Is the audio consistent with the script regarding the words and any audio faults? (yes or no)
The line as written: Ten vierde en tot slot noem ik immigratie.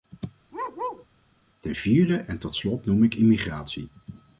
no